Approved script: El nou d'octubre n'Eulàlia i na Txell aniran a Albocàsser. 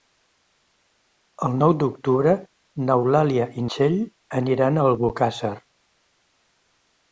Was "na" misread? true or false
true